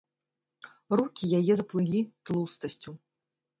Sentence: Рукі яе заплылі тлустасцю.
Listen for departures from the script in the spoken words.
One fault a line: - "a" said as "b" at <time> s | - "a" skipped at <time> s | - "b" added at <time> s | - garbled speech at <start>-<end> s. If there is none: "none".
none